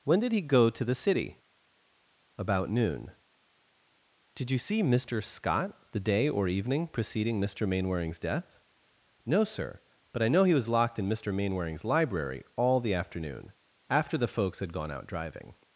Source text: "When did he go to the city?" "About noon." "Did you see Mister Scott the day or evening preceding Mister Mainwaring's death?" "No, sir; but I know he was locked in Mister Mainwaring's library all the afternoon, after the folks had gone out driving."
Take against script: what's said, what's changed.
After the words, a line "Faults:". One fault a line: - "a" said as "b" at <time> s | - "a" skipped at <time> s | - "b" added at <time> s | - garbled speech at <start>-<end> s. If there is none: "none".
"When did he go to the city?" "About noon." "Did you see Mister Scott the day or evening preceding Mister Mainwaring's death?" "No, sir; but I know he was locked in Mister Mainwaring's library all the afternoon, after the folks had gone out driving."
Faults:
none